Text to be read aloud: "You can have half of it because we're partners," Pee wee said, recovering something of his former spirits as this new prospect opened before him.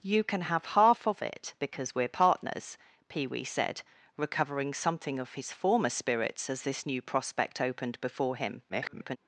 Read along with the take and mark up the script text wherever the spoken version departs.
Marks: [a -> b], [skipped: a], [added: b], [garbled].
"You can have half of it because we're partners," Pee wee said, recovering something of his former spirits as this new prospect opened before him. [garbled]